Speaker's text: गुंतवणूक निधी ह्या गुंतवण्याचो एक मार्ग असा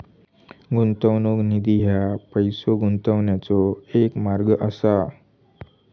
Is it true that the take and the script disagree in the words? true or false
true